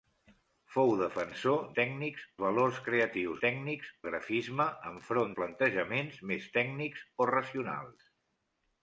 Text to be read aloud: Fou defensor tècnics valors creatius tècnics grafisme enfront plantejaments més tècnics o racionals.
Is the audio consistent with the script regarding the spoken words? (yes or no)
yes